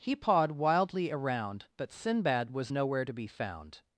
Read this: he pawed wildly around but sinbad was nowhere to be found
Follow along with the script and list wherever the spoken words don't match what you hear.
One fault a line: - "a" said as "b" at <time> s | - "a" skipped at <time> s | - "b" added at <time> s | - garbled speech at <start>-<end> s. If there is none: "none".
none